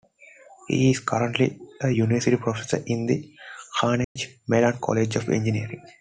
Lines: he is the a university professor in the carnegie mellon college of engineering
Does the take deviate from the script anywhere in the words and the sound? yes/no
yes